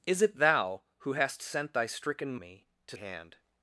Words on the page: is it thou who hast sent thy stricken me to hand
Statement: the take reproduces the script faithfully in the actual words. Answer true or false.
true